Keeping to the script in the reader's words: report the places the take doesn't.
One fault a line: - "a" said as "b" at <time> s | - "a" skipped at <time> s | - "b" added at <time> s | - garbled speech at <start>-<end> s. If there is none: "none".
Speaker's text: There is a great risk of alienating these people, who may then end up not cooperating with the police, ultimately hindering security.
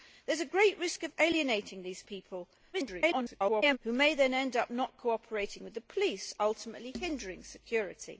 - garbled speech at 2.7-3.8 s